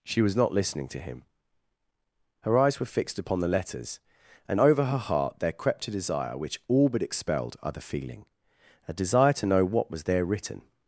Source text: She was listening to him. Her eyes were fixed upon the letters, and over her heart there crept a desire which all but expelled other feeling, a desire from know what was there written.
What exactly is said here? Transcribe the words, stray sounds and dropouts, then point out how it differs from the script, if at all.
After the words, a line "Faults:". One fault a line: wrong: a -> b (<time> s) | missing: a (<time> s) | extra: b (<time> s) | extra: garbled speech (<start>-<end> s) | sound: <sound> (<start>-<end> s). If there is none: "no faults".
She was not listening to him. Her eyes were fixed upon the letters, and over her heart there crept a desire which all but expelled other feeling, a desire to know what was there written.
Faults:
extra: not (0.3 s)
wrong: from -> to (9.3 s)